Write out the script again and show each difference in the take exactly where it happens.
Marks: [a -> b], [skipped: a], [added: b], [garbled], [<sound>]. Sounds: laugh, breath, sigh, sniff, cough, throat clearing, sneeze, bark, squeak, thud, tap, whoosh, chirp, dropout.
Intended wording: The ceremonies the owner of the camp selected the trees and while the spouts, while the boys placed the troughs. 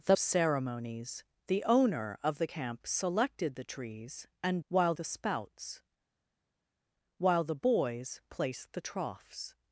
The ceremonies the owner of the camp selected the trees and while the spouts, while the boys placed the troughs.